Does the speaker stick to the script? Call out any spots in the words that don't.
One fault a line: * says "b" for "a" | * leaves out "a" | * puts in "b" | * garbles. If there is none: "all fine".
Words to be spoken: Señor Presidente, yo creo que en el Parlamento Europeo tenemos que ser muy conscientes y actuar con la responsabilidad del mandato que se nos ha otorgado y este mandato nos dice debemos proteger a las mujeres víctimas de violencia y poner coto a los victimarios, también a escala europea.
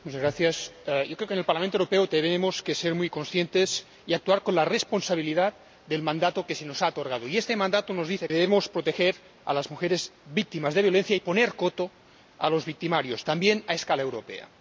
all fine